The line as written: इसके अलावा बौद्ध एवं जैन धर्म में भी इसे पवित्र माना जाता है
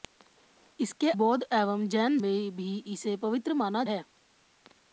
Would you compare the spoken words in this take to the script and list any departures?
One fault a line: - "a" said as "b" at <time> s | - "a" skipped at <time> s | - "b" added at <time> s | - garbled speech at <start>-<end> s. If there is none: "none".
- "अलावा" skipped at 1.1 s
- "धर्म" skipped at 2.2 s
- "जाता" skipped at 3.8 s